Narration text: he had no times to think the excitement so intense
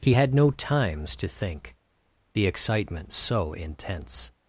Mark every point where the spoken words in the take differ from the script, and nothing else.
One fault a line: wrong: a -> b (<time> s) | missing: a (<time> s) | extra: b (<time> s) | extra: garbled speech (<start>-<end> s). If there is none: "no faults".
no faults